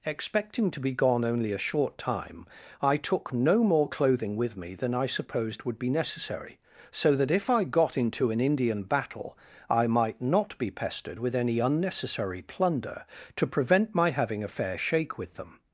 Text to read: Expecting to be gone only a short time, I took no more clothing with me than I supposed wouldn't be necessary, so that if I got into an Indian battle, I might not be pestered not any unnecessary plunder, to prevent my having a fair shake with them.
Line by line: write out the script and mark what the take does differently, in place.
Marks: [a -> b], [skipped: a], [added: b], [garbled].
Expecting to be gone only a short time, I took no more clothing with me than I supposed [wouldn't -> would] be necessary, so that if I got into an Indian battle, I might not be pestered [not -> with] any unnecessary plunder, to prevent my having a fair shake with them.